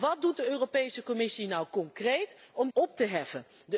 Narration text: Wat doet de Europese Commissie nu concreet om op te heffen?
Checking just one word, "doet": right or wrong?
right